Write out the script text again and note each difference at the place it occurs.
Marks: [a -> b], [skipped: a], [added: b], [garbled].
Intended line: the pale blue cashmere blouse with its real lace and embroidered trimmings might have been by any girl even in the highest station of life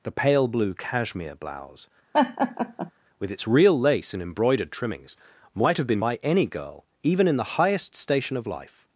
the pale blue cashmere blouse with its real lace and embroidered trimmings might have been by any girl even in the highest station of life